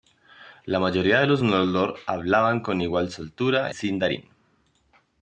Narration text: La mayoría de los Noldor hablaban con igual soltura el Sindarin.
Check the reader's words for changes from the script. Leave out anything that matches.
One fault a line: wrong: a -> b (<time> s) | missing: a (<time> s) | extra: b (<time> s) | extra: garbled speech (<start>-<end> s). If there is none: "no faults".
missing: el (3.7 s)